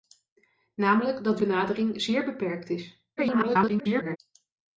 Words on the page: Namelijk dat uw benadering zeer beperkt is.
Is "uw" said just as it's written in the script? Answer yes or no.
no